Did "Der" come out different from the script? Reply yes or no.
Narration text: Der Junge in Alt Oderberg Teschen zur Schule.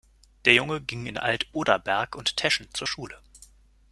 no